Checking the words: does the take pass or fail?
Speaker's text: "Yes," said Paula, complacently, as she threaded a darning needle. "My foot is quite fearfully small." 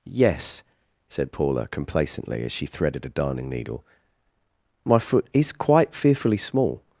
pass